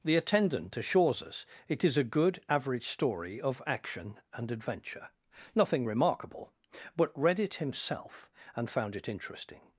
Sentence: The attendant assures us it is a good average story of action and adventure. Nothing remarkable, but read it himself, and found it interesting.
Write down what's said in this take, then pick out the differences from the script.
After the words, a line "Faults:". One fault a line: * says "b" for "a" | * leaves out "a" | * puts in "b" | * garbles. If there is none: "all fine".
The attendant assures us it is a good average story of action and adventure. Nothing remarkable, but read it himself, and found it interesting.
Faults:
all fine